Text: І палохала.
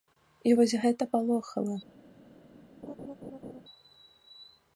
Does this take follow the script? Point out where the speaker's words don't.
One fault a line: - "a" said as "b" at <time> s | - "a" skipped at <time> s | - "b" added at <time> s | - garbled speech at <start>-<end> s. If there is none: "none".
- "вось гэта" added at 0.6 s